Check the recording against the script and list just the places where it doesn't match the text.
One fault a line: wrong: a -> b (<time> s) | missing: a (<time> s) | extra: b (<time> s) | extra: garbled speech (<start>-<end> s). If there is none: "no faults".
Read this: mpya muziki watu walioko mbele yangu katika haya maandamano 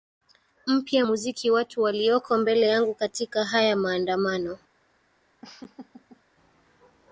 no faults